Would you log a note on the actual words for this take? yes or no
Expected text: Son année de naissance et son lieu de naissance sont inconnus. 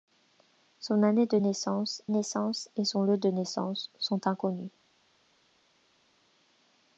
yes